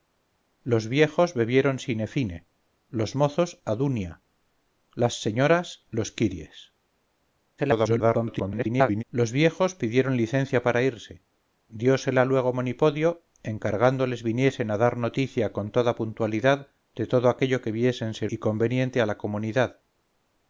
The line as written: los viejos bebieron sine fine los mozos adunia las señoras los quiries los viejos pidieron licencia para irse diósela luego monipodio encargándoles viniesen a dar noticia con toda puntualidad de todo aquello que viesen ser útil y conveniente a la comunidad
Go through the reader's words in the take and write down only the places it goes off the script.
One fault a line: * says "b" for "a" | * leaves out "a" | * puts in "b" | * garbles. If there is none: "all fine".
* garbles
* leaves out "útil"